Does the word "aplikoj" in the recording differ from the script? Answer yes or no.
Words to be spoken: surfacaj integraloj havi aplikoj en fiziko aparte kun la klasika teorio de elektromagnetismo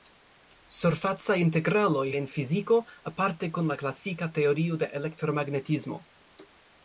yes